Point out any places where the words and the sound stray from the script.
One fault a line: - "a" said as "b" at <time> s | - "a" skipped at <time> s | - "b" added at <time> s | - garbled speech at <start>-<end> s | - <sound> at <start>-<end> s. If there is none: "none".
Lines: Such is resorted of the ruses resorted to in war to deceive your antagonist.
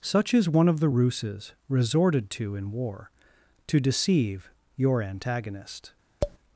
- "resorted" said as "one" at 0.5 s
- tap at 6.2-6.4 s